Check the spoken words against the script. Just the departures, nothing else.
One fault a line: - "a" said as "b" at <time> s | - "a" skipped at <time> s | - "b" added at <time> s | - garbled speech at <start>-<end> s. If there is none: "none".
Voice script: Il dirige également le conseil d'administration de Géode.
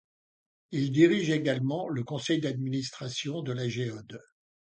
- "la" added at 3.5 s